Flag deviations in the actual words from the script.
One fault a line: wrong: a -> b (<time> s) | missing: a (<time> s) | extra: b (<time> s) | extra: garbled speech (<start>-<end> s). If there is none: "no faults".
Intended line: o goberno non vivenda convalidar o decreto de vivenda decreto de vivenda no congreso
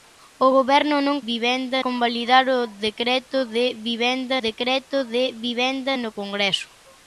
no faults